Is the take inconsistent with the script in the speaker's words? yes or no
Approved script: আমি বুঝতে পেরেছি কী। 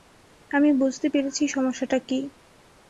yes